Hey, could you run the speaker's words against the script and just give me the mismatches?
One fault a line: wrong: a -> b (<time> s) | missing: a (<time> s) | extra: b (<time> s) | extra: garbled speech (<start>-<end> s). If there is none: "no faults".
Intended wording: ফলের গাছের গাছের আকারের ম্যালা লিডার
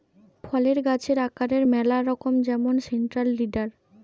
missing: গাছের (1.2 s)
extra: রকম যেমন সেন্ট্রাল (2.0 s)